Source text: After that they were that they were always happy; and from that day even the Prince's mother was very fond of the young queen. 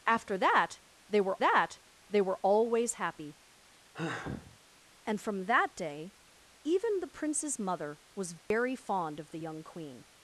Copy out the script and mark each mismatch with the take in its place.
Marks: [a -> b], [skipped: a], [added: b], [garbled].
After that they were that they were always happy; and from that day even the Prince's mother was very fond of the young queen.